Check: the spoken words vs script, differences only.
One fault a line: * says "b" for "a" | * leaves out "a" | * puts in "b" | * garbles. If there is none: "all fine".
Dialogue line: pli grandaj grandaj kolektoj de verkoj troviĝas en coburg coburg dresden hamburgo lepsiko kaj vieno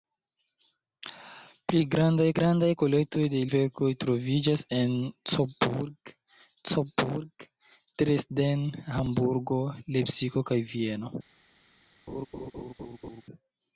all fine